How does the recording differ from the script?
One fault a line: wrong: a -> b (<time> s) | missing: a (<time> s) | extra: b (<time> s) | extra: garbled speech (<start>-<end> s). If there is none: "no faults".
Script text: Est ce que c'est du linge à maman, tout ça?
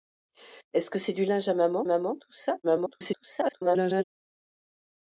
extra: maman (1.8 s)
extra: garbled speech (2.6-4.0 s)